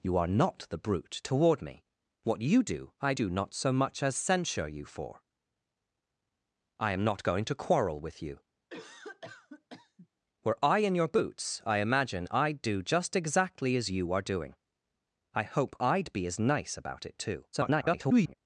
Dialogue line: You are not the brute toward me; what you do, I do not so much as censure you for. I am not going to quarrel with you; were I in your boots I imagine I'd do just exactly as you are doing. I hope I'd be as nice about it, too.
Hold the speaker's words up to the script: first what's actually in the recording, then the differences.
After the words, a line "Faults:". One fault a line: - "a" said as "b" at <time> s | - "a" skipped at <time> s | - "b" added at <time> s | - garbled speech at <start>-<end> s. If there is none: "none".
You are not the brute toward me; what you do, I do not so much as censure you for. I am not going to quarrel with you; were I in your boots I imagine I'd do just exactly as you are doing. I hope I'd be as nice about it, too. [garbled]
Faults:
- garbled speech at 17.5-18.3 s